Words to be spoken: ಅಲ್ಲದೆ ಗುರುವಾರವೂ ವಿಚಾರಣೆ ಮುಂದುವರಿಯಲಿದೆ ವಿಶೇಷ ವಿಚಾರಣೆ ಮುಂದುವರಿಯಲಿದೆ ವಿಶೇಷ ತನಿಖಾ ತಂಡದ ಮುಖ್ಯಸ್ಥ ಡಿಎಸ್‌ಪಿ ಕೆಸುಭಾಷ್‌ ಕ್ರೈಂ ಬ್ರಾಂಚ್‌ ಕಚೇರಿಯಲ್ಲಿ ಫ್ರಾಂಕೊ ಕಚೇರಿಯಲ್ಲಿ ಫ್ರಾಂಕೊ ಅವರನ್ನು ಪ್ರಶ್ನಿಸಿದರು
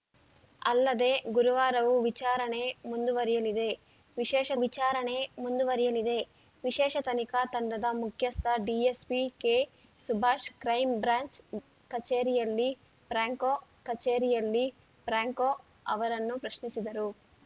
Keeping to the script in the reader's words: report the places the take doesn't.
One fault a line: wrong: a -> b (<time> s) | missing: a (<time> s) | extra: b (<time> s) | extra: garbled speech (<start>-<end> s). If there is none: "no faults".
no faults